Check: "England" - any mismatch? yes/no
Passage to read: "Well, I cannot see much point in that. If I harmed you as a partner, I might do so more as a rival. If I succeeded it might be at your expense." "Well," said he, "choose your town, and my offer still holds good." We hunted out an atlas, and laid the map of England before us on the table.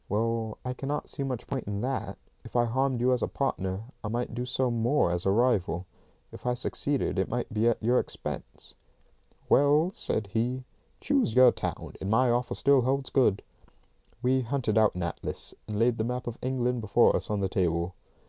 no